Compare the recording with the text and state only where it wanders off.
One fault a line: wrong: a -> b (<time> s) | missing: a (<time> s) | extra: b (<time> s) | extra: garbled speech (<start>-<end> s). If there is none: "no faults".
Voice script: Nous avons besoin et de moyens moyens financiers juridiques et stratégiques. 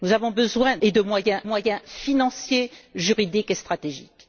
no faults